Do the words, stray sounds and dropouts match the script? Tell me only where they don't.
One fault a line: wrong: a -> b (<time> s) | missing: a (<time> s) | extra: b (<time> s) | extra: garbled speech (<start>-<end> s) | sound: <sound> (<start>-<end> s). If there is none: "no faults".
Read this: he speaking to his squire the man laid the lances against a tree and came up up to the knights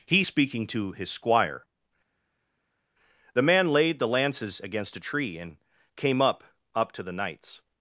no faults